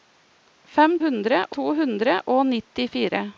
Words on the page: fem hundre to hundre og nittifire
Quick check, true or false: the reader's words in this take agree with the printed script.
true